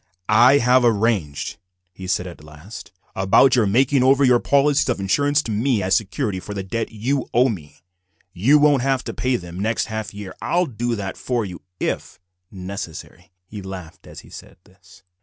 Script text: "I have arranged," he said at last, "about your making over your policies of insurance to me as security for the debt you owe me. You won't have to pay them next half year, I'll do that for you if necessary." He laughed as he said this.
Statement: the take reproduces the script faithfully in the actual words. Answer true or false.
true